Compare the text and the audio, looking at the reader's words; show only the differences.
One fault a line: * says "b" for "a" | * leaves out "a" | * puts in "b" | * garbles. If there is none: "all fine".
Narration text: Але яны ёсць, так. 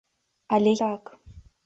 * leaves out "яны ёсць"